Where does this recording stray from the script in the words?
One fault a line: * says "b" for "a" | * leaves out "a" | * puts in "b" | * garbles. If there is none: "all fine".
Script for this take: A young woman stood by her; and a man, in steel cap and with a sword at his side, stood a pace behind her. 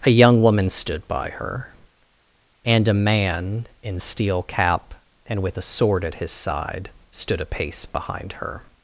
all fine